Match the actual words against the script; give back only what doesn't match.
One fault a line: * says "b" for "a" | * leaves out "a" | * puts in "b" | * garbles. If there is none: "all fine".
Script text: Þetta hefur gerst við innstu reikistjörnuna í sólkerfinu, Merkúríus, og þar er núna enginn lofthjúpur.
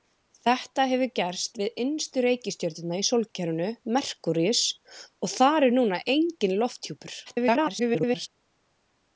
* garbles